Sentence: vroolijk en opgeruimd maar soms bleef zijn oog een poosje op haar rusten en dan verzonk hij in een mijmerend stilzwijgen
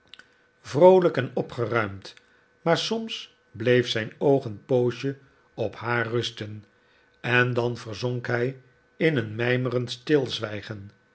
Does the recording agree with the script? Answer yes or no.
yes